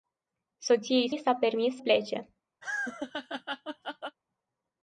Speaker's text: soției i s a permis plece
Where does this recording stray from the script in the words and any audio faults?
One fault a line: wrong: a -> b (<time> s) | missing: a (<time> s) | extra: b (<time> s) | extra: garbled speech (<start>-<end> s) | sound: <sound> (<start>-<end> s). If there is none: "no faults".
sound: laugh (2.6-4.2 s)